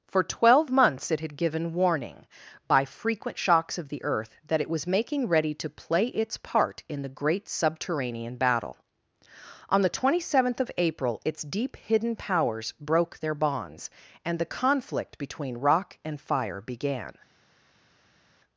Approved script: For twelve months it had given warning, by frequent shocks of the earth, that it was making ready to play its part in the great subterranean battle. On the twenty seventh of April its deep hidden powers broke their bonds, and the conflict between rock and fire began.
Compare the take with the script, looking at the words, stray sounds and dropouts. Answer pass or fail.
pass